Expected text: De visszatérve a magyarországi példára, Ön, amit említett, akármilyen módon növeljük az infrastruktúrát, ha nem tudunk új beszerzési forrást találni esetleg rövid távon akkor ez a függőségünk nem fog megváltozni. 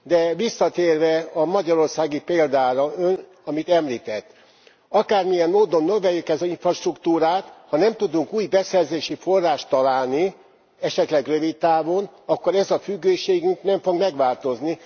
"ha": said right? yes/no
yes